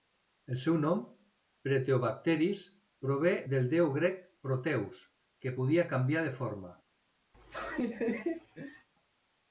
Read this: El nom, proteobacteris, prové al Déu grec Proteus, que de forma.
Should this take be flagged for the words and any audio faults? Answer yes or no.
yes